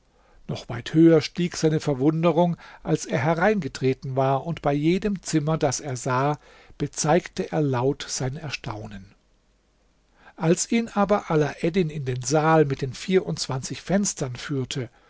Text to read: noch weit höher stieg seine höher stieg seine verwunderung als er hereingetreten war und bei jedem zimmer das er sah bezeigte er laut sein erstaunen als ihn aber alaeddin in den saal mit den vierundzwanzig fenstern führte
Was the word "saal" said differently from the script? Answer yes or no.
no